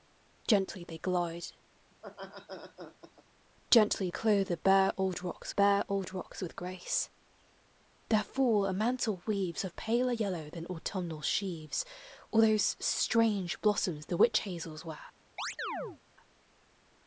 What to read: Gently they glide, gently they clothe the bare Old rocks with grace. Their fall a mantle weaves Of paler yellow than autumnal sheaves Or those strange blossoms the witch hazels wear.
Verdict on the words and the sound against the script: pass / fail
fail